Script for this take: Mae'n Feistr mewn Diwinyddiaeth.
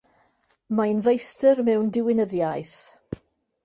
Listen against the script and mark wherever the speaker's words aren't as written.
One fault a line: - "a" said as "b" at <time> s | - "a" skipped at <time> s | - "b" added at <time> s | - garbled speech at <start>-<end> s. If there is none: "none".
none